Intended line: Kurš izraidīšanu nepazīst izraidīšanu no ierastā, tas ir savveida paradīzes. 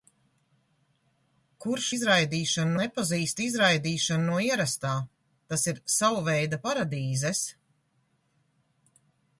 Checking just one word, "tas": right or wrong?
right